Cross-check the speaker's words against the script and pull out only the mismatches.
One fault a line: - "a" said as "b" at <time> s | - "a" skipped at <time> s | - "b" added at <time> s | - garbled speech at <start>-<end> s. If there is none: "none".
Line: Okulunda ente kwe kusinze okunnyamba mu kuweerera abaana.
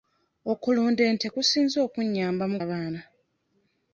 - "kwe" skipped at 1.3 s
- "kuweerera" skipped at 2.6 s